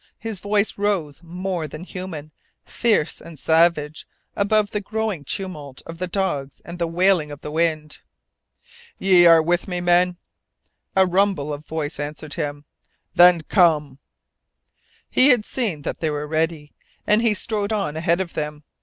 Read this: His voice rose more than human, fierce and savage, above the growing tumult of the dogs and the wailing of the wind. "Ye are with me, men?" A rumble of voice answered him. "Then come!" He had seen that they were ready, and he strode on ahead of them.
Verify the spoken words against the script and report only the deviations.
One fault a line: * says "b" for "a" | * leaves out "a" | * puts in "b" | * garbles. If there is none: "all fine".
all fine